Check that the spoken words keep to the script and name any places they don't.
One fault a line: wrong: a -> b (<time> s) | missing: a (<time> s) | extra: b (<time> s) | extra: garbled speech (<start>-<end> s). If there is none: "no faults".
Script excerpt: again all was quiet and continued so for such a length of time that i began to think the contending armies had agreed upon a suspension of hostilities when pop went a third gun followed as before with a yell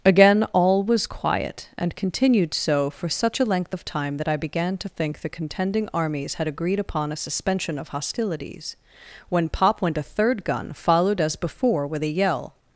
no faults